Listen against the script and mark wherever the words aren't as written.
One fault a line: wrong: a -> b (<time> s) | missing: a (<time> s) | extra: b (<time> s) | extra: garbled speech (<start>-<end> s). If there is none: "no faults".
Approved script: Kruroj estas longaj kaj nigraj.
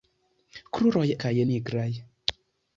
missing: estas longaj (1.0 s)